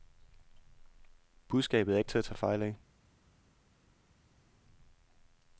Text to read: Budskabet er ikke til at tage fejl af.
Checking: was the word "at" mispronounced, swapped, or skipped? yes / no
no